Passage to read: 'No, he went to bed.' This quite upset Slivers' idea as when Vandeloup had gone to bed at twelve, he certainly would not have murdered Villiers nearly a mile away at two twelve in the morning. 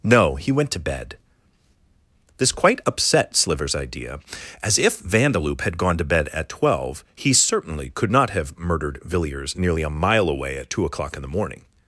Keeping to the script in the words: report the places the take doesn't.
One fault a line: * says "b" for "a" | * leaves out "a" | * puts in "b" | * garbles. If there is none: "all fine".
* says "if" for "when"
* says "could" for "would"
* says "o'clock" for "twelve"